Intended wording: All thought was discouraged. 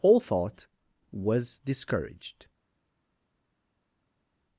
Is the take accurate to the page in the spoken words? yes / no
yes